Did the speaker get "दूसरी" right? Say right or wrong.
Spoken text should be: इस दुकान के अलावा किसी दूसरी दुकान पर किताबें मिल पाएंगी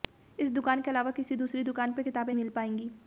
right